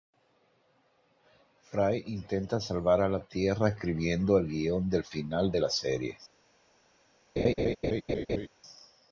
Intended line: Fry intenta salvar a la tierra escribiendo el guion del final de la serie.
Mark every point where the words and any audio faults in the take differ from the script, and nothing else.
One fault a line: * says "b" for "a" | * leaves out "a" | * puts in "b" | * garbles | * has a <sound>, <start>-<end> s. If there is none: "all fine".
* has a laugh, 7.4-8.5 s